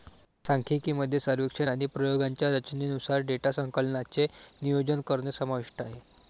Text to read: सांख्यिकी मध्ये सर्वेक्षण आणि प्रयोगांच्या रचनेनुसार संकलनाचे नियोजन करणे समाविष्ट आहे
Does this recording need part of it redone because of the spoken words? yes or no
yes